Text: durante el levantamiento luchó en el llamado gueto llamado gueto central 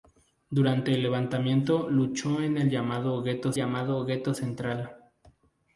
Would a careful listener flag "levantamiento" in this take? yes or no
no